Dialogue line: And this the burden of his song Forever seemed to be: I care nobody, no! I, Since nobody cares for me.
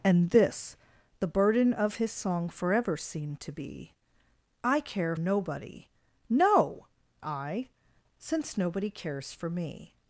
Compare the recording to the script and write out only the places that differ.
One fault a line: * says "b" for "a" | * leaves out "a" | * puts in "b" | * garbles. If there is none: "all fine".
all fine